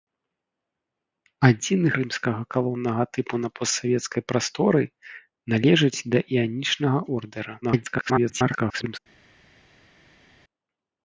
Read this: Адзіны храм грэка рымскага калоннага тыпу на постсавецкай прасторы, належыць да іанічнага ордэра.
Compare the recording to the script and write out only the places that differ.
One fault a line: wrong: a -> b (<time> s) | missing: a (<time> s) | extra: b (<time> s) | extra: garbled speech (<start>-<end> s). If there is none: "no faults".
missing: храм грэка (1.9 s)
extra: garbled speech (7.6-9.0 s)